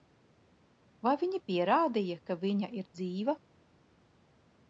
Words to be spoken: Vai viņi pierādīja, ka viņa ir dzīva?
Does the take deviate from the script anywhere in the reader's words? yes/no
no